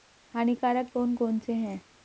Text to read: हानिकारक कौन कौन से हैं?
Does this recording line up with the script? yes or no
yes